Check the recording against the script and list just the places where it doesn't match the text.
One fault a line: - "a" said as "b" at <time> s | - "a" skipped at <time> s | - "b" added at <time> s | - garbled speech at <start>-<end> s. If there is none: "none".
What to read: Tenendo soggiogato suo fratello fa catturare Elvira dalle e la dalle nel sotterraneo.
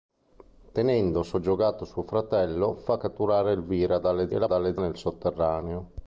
none